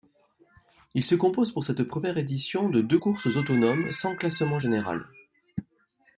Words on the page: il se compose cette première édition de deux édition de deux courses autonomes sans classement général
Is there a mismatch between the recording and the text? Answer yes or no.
yes